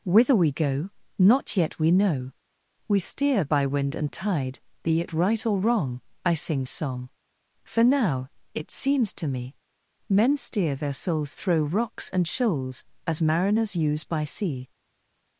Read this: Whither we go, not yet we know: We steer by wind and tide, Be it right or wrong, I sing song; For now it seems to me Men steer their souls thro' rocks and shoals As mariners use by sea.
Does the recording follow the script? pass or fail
pass